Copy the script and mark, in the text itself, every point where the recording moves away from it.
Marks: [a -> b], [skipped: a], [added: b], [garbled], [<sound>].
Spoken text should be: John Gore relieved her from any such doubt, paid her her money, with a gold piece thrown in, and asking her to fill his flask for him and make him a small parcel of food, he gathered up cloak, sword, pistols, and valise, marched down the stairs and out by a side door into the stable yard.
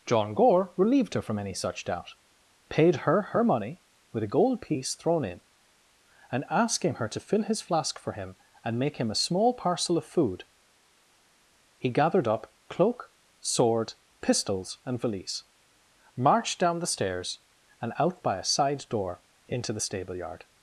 John Gore relieved her from any such doubt, paid her her money, with a gold piece thrown in, and asking her to fill his flask for him and make him a small parcel of food, he gathered up cloak, sword, pistols, and valise, marched down the stairs and out by a side door into the stable yard.